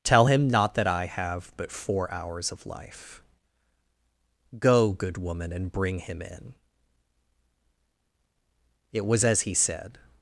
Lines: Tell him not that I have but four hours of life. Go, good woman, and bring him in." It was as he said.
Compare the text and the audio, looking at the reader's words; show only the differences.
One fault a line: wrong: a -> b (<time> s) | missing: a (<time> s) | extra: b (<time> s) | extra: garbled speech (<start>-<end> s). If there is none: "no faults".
no faults